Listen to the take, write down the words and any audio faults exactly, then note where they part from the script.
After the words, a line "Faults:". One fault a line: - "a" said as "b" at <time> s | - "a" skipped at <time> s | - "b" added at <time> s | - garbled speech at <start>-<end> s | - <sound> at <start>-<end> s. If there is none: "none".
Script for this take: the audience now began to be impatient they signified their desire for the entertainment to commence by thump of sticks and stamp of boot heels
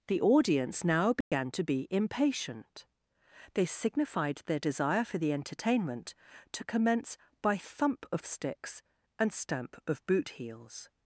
the audience now began to be impatient they signified their desire for the entertainment to commence by thump of sticks and stamp of boot heels
Faults:
- dropout at 1.2-1.3 s